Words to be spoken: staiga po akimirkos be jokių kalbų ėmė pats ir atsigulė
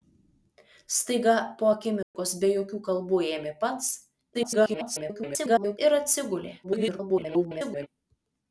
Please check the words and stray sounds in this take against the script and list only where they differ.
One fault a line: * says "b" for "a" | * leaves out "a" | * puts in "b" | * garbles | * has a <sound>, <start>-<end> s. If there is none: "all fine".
* has a dropout, 2.0-2.1 s
* garbles
* garbles